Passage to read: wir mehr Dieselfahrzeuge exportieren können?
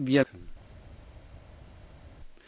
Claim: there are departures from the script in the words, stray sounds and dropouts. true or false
true